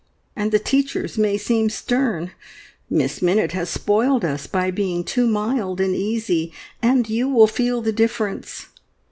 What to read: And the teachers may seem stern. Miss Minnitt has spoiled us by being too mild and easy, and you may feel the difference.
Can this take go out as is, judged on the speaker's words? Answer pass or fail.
fail